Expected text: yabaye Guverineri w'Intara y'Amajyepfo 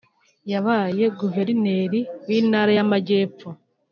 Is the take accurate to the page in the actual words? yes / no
yes